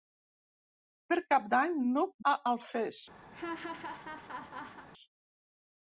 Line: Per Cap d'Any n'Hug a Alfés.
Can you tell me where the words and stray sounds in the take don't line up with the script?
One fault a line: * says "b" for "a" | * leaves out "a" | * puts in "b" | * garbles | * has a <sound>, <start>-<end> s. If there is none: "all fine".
* has a laugh, 3.3-4.9 s